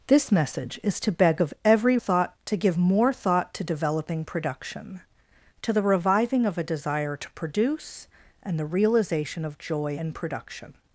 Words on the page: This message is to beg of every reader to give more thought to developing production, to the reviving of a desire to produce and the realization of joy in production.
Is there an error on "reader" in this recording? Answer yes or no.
yes